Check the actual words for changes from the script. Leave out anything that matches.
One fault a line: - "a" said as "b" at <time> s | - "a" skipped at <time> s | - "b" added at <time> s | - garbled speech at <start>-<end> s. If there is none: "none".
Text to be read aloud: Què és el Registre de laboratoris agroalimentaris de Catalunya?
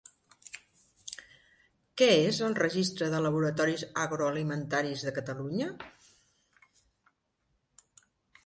none